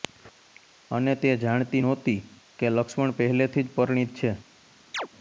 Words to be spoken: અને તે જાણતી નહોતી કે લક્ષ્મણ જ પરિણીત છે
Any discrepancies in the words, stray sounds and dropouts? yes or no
yes